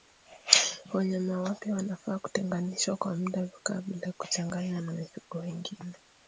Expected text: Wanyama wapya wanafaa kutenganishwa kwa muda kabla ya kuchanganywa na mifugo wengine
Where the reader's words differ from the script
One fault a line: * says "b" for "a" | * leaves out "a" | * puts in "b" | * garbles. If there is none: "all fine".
all fine